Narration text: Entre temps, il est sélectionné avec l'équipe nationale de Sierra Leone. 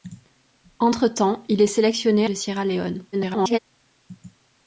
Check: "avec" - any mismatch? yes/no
yes